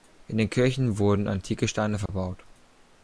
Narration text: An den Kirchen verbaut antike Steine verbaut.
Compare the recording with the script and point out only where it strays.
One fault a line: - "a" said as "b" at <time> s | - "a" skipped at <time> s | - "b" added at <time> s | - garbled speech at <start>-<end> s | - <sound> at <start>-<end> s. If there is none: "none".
- "An" said as "In" at 0.2 s
- "verbaut" said as "wurden" at 1.0 s
- dropout at 2.1-2.1 s